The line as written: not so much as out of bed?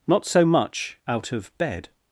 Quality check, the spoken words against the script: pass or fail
fail